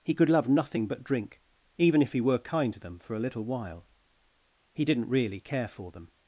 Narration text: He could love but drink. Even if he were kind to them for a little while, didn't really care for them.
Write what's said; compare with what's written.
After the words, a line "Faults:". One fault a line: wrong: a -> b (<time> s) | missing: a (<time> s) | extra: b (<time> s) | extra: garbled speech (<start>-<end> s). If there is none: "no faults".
He could love nothing but drink. Even if he were kind to them for a little while, he didn't really care for them.
Faults:
extra: nothing (0.5 s)
extra: he (4.7 s)